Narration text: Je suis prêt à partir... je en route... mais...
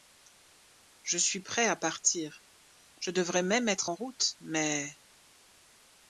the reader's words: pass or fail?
fail